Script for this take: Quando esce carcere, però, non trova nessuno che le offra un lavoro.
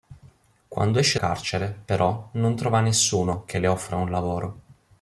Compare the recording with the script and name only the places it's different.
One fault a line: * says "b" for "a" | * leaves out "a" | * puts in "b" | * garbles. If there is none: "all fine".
all fine